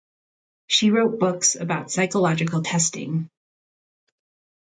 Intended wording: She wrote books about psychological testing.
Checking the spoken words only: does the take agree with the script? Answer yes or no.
yes